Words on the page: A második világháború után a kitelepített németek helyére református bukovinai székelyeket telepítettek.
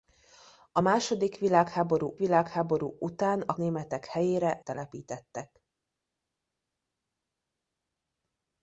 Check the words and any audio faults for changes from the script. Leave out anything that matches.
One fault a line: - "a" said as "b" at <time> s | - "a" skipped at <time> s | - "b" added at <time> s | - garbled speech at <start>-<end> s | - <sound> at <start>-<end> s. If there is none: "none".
- "világháború" added at 2.2 s
- "kitelepített" skipped at 3.5 s
- "református bukovinai székelyeket" skipped at 4.6 s